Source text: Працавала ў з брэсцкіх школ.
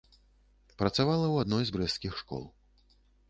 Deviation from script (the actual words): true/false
true